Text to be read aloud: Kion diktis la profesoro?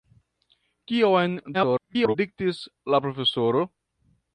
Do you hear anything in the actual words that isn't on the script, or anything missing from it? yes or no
yes